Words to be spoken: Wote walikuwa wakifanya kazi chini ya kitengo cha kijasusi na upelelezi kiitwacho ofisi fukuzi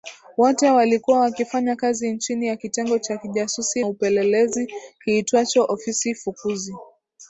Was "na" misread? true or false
true